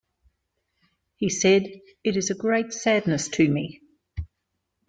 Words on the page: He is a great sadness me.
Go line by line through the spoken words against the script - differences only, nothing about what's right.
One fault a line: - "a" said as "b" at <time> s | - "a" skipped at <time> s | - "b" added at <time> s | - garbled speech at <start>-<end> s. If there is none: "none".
- "said It" added at 1.3 s
- "to" added at 3.3 s